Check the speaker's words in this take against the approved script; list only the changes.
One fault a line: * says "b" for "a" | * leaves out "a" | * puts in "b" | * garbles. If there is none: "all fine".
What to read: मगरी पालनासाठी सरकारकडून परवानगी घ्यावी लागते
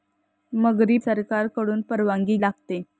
* leaves out "पालनासाठी"
* leaves out "घ्यावी"